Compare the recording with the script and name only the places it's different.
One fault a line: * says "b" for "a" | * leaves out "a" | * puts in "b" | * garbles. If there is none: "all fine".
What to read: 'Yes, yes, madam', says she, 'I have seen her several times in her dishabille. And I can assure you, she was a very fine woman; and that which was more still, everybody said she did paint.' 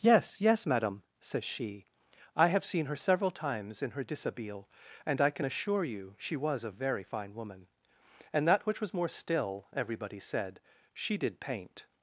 all fine